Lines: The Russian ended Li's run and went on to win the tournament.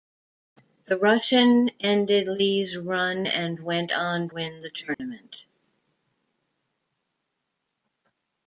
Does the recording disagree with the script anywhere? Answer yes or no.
yes